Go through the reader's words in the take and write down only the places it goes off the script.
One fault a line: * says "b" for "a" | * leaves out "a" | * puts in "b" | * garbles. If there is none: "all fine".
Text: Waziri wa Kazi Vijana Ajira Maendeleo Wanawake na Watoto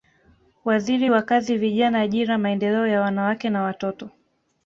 * puts in "ya"